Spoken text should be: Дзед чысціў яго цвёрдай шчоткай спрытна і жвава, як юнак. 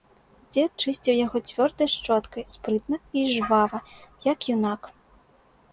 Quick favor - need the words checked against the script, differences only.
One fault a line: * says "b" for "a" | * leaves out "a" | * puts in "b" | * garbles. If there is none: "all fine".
all fine